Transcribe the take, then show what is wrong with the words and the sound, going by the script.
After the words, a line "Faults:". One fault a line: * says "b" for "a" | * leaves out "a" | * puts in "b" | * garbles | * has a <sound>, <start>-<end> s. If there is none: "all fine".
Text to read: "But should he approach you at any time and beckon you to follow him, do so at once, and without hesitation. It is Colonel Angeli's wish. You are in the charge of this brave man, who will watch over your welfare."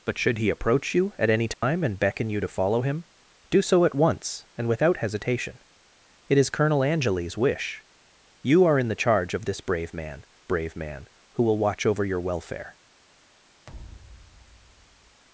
"But should he approach you at any time and beckon you to follow him, do so at once, and without hesitation. It is Colonel Angeli's wish. You are in the charge of this brave man brave man, who will watch over your welfare."
Faults:
* has a dropout, 1.5-1.6 s
* puts in "brave man"
* has a thud, 13.7-15.2 s